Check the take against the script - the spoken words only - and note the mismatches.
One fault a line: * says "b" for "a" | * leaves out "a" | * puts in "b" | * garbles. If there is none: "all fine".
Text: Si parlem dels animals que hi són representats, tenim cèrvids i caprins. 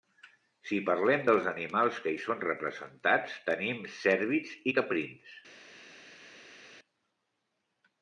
all fine